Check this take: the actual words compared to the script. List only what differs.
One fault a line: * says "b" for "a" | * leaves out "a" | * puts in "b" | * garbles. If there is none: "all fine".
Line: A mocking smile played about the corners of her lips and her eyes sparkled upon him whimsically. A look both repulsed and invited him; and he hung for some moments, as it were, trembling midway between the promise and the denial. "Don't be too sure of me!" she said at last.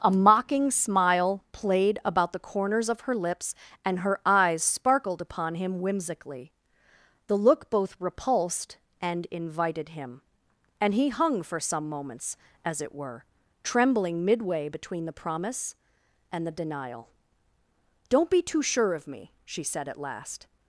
* says "The" for "A"